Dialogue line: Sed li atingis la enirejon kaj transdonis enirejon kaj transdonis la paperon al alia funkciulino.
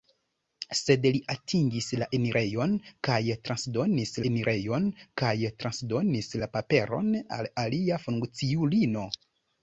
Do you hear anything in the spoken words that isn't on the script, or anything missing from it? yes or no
no